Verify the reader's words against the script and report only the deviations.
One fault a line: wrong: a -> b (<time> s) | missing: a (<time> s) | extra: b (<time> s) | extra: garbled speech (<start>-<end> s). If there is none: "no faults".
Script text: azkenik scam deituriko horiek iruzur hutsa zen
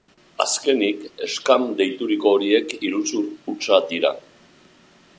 wrong: zen -> dira (3.9 s)